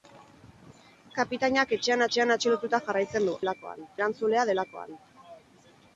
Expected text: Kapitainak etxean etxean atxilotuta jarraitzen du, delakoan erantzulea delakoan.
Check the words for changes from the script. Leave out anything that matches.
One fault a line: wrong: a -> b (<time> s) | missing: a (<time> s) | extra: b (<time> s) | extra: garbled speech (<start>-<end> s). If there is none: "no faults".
no faults